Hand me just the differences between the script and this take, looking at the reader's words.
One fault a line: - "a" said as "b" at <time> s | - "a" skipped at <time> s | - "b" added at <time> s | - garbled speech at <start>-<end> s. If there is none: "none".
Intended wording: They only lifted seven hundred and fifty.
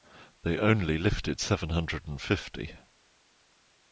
none